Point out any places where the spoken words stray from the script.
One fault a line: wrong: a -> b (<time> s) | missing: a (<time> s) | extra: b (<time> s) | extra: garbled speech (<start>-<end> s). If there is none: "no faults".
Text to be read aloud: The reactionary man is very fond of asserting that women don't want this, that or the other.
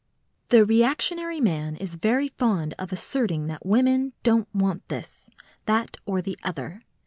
no faults